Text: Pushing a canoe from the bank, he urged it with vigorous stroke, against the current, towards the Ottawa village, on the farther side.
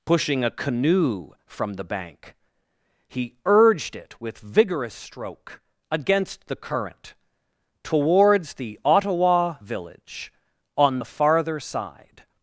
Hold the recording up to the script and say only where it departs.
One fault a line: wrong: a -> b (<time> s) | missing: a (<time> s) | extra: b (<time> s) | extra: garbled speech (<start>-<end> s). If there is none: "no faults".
no faults